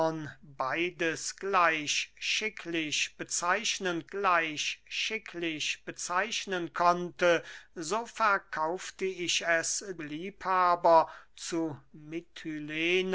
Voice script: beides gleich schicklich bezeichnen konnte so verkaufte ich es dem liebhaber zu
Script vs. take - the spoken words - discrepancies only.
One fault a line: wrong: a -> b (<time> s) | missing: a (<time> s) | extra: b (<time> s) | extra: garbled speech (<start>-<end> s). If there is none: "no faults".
extra: gleich schicklich bezeichnen (4.1 s)
missing: dem (9.8 s)